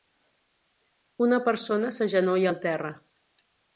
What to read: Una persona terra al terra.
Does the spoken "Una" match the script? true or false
true